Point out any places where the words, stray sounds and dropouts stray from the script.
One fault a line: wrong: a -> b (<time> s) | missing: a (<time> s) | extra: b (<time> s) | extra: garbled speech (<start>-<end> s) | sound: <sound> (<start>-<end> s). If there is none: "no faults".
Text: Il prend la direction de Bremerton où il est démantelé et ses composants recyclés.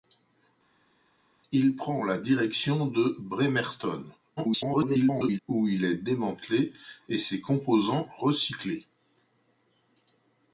extra: garbled speech (4.4-5.4 s)